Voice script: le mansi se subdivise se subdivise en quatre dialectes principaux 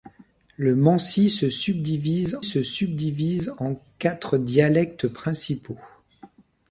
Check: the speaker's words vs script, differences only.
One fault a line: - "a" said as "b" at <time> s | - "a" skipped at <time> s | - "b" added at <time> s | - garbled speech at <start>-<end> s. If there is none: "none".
none